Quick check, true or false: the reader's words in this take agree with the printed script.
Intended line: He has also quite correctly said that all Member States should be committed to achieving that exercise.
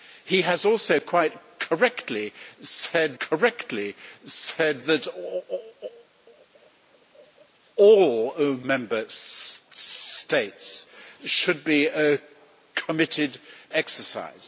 false